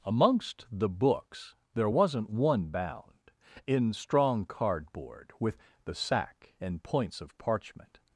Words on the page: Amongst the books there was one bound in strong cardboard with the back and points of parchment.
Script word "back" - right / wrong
wrong